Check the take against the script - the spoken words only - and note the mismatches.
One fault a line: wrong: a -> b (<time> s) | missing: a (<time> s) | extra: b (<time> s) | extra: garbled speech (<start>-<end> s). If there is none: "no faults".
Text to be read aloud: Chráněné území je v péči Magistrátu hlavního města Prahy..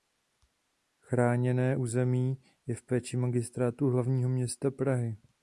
no faults